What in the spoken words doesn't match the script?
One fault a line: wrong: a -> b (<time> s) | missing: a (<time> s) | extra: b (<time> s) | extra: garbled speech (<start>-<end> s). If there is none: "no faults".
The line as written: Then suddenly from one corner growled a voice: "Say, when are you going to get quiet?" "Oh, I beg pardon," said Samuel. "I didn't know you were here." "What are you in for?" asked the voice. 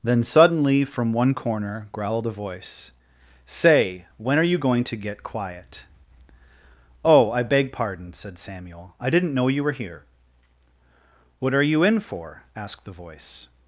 no faults